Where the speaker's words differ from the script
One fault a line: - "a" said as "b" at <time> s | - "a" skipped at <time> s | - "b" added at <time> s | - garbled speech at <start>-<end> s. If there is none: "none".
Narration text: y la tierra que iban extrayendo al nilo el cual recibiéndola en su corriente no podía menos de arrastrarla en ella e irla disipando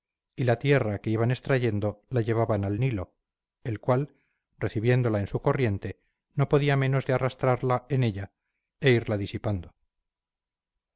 - "la llevaban" added at 2.1 s